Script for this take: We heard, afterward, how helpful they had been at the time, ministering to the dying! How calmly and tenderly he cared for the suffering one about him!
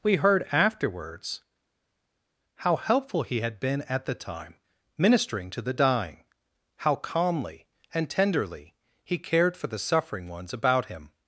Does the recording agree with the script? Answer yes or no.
no